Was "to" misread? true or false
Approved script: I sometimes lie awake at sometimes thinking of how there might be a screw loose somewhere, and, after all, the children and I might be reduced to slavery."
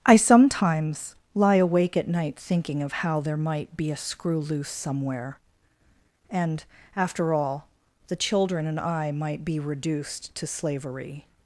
false